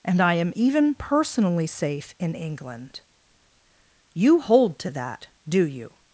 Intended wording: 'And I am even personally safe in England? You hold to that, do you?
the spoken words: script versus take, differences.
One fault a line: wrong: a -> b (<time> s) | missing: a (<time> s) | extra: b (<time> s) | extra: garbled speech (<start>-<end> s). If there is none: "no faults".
no faults